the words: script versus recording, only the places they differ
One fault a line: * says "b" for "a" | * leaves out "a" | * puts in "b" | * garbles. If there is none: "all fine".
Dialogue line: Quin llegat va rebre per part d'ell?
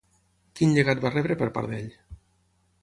all fine